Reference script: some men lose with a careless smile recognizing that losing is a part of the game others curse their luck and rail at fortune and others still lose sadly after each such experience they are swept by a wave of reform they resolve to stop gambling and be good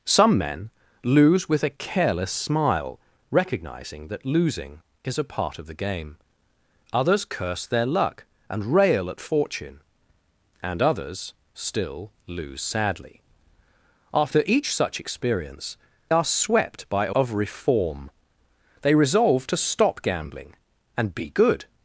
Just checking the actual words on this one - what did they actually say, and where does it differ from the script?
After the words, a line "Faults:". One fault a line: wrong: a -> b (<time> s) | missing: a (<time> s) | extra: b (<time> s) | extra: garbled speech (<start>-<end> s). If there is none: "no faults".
some men lose with a careless smile recognizing that losing is a part of the game others curse their luck and rail at fortune and others still lose sadly after each such experience are swept by a of reform they resolve to stop gambling and be good
Faults:
missing: they (15.8 s)
missing: wave (17.2 s)